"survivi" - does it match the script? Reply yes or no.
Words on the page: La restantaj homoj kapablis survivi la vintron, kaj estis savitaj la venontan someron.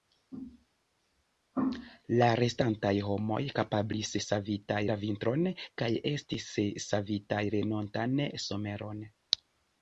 no